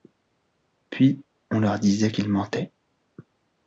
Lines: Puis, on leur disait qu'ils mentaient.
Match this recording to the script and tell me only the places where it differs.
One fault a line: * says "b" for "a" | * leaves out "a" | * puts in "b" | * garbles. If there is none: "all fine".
all fine